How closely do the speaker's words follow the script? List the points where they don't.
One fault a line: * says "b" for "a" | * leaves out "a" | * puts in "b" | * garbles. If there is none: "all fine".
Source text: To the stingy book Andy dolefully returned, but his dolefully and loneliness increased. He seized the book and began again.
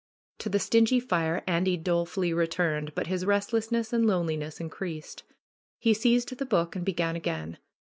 * says "fire" for "book"
* says "restlessness" for "dolefully"